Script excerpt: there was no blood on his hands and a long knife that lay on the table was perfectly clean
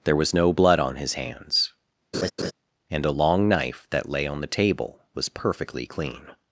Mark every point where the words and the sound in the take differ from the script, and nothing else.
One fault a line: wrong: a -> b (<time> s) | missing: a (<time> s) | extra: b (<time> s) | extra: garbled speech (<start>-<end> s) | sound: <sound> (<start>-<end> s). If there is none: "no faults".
sound: laugh (2.1-2.5 s)